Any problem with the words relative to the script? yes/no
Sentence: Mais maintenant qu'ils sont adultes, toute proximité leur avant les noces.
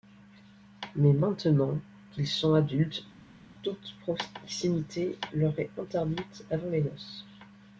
yes